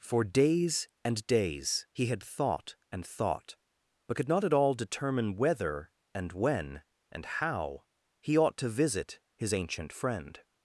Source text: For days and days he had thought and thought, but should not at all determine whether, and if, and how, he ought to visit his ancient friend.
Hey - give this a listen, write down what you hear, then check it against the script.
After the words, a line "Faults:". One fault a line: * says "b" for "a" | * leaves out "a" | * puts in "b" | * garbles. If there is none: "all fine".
For days and days he had thought and thought, but could not at all determine whether, and when, and how, he ought to visit his ancient friend.
Faults:
* says "could" for "should"
* says "when" for "if"